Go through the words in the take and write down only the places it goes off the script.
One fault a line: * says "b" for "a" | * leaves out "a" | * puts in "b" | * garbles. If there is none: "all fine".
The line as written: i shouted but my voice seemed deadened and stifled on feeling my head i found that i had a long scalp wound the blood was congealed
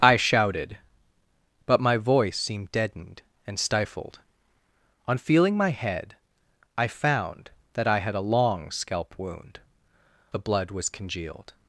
all fine